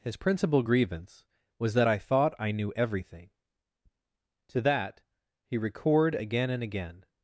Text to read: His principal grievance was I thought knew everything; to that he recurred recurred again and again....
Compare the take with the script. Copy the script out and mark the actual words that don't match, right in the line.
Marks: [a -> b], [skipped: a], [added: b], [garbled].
His principal grievance was [added: that] I thought [added: I] knew everything; to that he recurred [skipped: recurred] again and again....